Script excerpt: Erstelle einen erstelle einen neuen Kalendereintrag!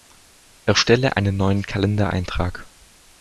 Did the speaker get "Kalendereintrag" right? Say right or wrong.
right